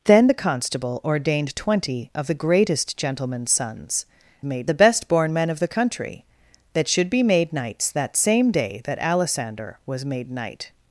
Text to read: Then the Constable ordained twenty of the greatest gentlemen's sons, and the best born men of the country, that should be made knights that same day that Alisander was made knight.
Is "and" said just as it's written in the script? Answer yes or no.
no